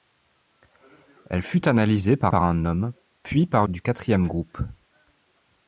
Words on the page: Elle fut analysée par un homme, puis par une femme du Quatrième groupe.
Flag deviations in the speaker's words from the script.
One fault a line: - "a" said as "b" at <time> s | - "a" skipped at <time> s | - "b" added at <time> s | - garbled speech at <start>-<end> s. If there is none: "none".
- "par" added at 2.3 s
- "une femme" skipped at 3.7 s